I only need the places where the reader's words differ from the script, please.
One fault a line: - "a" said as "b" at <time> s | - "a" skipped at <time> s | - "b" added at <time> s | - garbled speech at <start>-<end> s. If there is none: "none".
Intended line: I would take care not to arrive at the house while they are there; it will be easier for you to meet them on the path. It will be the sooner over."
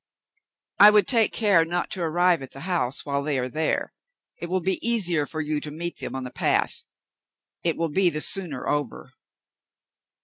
none